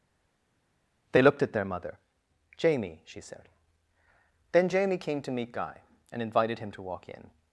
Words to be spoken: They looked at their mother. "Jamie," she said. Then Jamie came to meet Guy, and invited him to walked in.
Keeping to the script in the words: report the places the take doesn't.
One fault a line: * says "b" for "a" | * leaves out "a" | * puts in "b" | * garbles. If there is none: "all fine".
* says "walk" for "walked"